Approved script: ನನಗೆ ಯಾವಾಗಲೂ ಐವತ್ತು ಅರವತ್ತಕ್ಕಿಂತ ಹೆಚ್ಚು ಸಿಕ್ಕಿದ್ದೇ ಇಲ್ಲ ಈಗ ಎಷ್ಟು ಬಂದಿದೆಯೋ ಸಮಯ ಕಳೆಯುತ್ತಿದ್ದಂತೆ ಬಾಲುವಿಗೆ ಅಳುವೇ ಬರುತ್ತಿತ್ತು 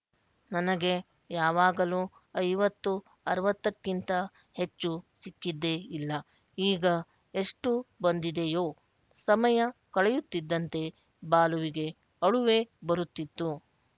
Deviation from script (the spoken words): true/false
false